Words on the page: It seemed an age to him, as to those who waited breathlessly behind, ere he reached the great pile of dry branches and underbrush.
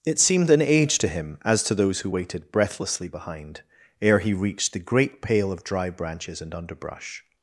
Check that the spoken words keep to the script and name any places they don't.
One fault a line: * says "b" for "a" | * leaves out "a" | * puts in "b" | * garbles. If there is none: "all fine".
* says "pale" for "pile"